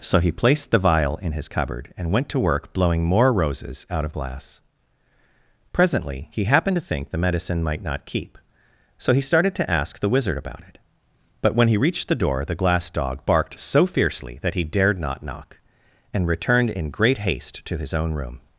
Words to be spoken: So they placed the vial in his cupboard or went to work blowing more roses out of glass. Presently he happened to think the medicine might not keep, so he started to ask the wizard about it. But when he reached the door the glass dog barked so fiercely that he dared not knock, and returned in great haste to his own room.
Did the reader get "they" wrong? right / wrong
wrong